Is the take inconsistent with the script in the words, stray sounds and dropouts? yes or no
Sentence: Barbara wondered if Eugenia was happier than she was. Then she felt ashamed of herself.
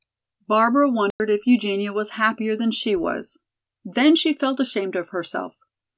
yes